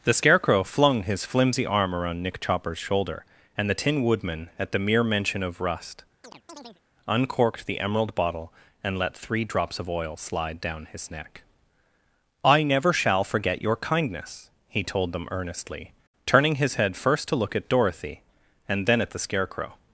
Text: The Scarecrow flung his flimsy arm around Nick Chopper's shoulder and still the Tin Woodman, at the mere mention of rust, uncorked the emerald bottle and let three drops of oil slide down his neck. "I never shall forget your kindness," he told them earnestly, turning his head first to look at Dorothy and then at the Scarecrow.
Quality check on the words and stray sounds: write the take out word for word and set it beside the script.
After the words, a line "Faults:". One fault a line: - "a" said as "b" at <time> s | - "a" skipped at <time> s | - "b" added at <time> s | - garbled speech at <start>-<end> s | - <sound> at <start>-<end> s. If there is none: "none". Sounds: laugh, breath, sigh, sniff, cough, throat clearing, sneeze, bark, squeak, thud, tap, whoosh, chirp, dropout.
The Scarecrow flung his flimsy arm around Nick Chopper's shoulder and the Tin Woodman, at the mere mention of rust, uncorked the emerald bottle and let three drops of oil slide down his neck. "I never shall forget your kindness," he told them earnestly, turning his head first to look at Dorothy and then at the Scarecrow.
Faults:
- "still" skipped at 3.7 s
- chirp at 6.2-6.8 s